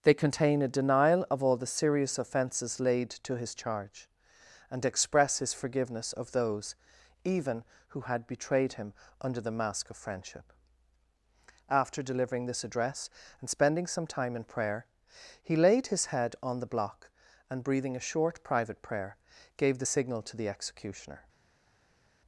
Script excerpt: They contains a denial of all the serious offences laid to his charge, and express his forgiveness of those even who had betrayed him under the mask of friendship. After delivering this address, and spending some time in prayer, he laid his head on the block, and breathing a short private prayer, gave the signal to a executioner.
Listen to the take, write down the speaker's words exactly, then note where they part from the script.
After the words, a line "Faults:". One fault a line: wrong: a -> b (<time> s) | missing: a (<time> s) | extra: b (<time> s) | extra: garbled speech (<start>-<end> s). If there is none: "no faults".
They contain a denial of all the serious offences laid to his charge, and express his forgiveness of those even who had betrayed him under the mask of friendship. After delivering this address, and spending some time in prayer, he laid his head on the block, and breathing a short private prayer, gave the signal to the executioner.
Faults:
wrong: contains -> contain (0.1 s)
wrong: a -> the (20.4 s)